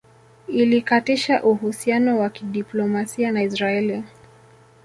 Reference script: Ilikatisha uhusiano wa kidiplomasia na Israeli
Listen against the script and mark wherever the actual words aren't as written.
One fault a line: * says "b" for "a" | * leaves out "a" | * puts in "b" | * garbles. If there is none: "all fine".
all fine